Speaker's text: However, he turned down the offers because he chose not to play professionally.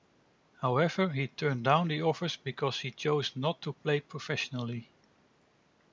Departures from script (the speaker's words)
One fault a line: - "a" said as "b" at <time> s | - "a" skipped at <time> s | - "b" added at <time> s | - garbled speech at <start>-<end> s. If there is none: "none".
none